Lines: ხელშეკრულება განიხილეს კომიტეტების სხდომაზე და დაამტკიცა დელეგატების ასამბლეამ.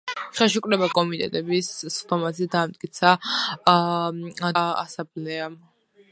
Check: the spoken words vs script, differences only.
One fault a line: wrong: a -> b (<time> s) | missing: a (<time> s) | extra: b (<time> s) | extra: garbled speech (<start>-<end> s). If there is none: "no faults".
missing: განიხილეს (0.9 s)
missing: დელეგატების (3.1 s)